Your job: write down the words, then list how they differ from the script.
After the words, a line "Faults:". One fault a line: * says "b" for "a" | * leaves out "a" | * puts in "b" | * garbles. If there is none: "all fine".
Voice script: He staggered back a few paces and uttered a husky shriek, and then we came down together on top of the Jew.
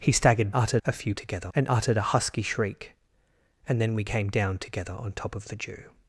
He staggered uttered a few together and uttered a husky shriek, and then we came down together on top of the Jew.
Faults:
* says "uttered" for "back"
* says "together" for "paces"